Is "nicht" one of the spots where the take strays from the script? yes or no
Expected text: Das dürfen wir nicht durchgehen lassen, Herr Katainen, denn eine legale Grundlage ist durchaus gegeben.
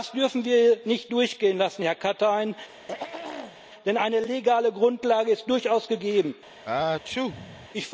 no